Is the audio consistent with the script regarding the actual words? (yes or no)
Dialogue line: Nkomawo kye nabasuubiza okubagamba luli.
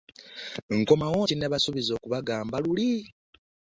yes